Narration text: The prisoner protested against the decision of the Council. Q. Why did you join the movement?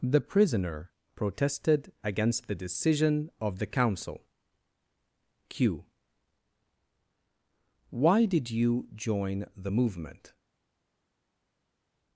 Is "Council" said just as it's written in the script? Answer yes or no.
yes